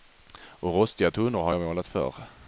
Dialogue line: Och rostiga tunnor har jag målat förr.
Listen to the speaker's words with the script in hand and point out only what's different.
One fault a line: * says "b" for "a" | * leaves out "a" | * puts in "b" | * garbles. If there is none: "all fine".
all fine